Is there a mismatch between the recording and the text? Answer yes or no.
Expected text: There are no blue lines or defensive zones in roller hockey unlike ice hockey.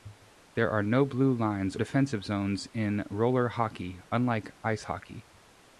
yes